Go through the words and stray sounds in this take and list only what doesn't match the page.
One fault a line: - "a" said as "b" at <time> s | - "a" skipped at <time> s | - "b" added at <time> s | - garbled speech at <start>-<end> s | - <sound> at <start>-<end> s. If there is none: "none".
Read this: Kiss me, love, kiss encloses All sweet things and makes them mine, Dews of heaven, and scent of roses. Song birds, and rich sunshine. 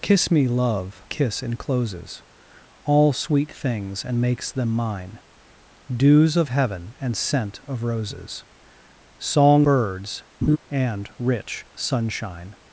- laugh at 10.4-10.6 s